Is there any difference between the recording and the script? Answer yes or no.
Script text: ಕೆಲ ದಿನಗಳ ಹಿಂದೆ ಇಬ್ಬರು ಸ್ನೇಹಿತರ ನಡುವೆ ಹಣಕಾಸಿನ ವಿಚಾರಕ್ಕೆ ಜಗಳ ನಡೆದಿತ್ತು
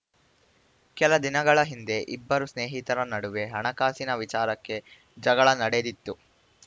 no